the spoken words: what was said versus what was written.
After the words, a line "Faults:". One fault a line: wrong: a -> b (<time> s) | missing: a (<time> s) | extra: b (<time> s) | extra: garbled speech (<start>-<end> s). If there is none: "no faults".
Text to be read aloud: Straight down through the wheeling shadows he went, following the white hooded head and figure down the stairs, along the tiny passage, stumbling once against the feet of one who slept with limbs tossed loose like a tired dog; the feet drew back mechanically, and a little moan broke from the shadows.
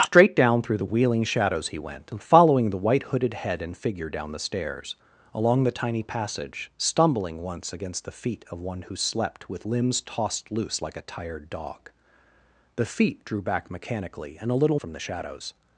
Straight down through the wheeling shadows he went, following the white hooded head and figure down the stairs, along the tiny passage, stumbling once against the feet of one who slept with limbs tossed loose like a tired dog; the feet drew back mechanically, and a little from the shadows.
Faults:
missing: moan broke (14.8 s)